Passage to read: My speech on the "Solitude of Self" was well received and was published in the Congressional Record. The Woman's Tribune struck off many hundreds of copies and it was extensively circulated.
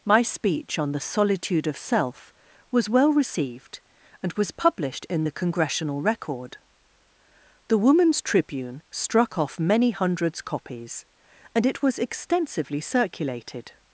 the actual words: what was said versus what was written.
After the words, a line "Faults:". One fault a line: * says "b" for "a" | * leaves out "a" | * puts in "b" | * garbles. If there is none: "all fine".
My speech on the "Solitude of Self" was well received and was published in the Congressional Record. The Woman's Tribune struck off many hundreds copies and it was extensively circulated.
Faults:
* leaves out "of"